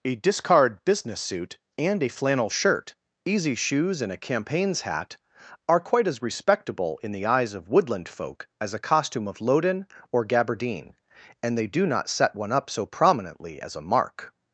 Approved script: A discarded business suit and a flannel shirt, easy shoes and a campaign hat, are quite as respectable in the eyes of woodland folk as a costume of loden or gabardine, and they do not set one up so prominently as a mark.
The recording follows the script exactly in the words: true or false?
false